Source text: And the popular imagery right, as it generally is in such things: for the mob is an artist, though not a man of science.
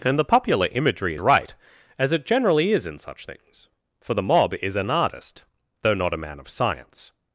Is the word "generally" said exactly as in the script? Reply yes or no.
yes